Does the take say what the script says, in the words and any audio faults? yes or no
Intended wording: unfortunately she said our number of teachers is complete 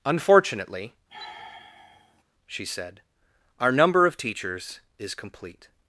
no